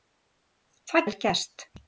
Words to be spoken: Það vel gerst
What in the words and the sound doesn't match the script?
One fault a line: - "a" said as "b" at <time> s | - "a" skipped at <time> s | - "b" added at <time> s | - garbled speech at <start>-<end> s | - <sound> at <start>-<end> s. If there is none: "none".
none